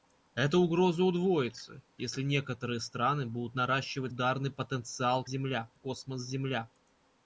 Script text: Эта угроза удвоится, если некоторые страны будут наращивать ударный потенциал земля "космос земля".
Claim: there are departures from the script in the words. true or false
false